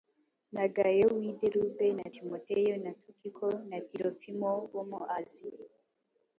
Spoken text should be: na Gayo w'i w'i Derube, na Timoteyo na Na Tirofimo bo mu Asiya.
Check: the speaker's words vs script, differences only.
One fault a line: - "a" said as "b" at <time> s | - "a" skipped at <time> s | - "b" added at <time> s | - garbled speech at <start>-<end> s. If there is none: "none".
- "w'i" skipped at 1.3 s
- "Tukiko" added at 3.0 s